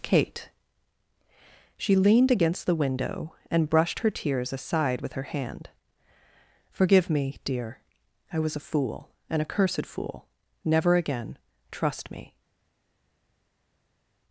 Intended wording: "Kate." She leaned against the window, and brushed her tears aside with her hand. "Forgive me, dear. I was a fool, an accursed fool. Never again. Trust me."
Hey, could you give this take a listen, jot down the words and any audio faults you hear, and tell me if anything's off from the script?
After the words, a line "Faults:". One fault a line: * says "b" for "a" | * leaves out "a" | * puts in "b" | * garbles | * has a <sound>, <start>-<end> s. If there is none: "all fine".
"Kate." She leaned against the window, and brushed her tears aside with her hand. "Forgive me, dear. I was a fool, an accursed fool. Never again. Trust me."
Faults:
all fine